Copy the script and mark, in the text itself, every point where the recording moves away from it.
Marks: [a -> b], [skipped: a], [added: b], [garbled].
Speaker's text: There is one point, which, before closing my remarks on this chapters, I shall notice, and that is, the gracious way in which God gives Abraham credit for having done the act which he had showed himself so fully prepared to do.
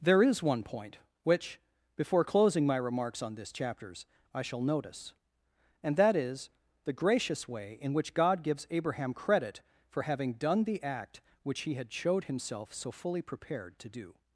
There is one point, which, before closing my remarks on this chapters, I shall notice, and that is, the gracious way in which God gives Abraham credit for having done the act which he had showed himself so fully prepared to do.